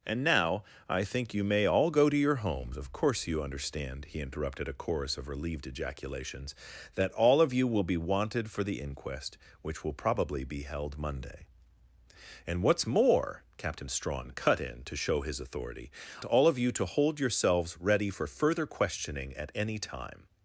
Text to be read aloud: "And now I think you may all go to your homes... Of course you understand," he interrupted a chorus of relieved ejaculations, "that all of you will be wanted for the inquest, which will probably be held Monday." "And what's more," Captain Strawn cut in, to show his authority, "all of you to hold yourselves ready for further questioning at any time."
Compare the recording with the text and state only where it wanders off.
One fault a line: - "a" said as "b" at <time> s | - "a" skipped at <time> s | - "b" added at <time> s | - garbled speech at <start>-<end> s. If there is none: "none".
none